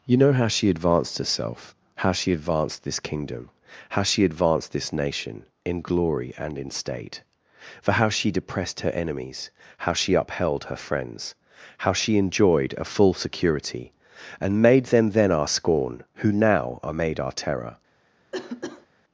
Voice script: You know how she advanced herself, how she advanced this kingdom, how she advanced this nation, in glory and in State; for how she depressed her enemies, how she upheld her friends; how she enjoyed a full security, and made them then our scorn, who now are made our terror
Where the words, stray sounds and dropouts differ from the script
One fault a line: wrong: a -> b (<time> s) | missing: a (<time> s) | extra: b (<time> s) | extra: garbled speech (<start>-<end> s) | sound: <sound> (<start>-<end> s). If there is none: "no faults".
sound: cough (18.3-18.9 s)